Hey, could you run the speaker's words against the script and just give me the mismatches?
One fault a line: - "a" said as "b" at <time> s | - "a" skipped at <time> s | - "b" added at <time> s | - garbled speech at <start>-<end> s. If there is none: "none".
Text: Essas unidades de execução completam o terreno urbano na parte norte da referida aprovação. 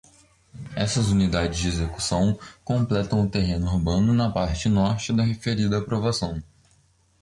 none